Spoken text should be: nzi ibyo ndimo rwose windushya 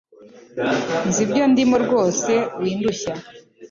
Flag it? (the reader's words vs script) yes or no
no